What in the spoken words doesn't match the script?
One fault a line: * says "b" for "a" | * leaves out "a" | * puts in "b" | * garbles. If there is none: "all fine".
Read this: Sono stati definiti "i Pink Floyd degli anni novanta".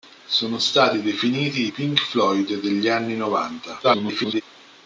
* garbles